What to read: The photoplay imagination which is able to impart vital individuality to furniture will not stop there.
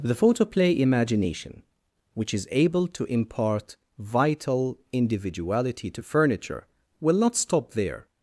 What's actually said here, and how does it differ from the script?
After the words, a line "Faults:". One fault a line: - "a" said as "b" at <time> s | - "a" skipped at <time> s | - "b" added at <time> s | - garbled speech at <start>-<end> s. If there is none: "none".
The photoplay imagination which is able to impart vital individuality to furniture will not stop there.
Faults:
none